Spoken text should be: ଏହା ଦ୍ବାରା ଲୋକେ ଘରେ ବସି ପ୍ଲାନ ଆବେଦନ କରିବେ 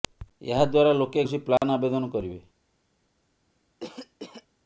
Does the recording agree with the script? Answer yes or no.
no